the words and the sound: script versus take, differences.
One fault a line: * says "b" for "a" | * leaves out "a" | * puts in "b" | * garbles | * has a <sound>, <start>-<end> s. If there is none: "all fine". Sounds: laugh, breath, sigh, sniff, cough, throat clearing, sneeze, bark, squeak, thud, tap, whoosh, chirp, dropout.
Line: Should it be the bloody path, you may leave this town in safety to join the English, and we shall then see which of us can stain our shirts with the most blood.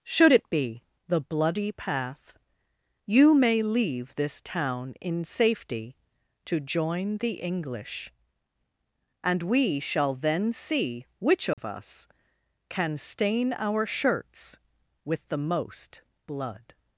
* has a dropout, 11.5-11.6 s